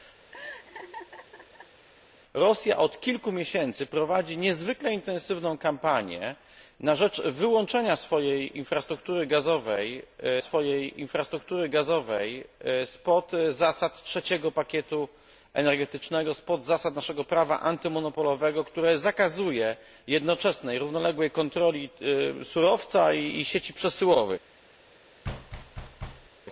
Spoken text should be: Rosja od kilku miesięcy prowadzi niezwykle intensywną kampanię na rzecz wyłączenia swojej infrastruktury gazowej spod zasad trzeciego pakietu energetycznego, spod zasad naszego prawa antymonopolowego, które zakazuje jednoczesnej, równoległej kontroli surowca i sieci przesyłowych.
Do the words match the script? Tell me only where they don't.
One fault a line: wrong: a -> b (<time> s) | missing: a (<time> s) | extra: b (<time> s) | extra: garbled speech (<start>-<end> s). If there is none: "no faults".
extra: swojej infrastruktury gazowej (10.4 s)